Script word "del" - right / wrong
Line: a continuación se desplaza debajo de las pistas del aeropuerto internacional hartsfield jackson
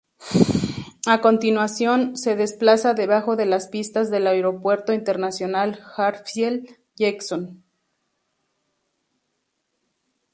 right